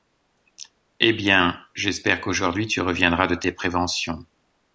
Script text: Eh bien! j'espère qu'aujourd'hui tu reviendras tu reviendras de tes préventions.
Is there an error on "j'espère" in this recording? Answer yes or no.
no